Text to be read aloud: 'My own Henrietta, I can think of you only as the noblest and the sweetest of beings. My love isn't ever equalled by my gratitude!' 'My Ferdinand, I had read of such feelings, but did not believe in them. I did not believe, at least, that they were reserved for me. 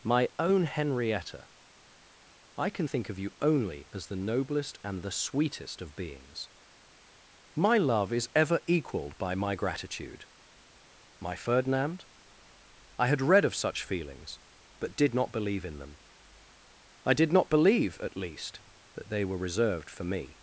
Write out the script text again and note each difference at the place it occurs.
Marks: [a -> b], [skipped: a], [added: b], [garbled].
'My own Henrietta, I can think of you only as the noblest and the sweetest of beings. My love [isn't -> is] ever equalled by my gratitude!' 'My Ferdinand, I had read of such feelings, but did not believe in them. I did not believe, at least, that they were reserved for me.